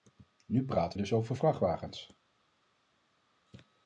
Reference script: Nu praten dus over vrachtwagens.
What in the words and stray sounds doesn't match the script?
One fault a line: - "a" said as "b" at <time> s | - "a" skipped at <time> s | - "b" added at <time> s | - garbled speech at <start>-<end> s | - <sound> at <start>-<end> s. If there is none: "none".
none